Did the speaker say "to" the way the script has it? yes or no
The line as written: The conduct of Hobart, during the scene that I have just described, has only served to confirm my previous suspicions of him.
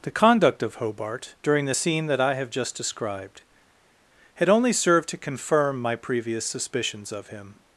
yes